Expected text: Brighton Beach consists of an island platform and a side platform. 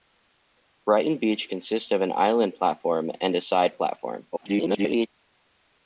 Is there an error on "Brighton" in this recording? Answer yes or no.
no